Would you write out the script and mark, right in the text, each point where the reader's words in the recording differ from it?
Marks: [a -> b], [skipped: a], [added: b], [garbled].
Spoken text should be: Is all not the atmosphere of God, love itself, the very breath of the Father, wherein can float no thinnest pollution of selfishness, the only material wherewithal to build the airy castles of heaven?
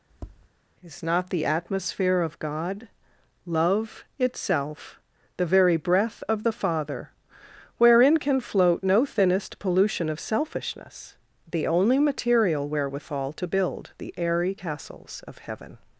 Is [skipped: all] not the atmosphere of God, love itself, the very breath of the Father, wherein can float no thinnest pollution of selfishness, the only material wherewithal to build the airy castles of heaven?